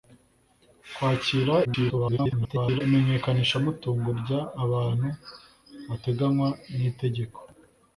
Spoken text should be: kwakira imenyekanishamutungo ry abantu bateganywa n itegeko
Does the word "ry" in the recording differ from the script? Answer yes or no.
no